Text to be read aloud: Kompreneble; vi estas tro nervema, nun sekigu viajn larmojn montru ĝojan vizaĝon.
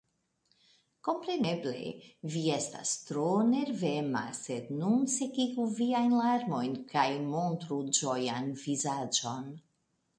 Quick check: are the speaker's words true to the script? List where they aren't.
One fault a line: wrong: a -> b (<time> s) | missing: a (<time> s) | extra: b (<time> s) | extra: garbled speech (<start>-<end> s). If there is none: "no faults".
extra: sed (4.4 s)
extra: kaj (7.0 s)